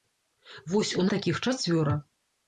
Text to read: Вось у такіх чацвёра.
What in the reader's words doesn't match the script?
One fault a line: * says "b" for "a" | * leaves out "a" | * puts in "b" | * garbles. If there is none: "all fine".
all fine